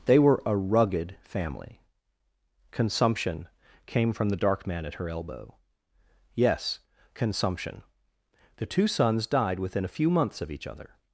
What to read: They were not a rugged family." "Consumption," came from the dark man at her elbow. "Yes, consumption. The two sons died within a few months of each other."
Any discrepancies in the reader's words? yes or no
yes